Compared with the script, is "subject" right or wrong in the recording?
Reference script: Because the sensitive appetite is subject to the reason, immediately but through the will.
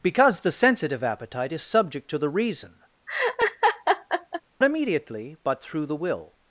right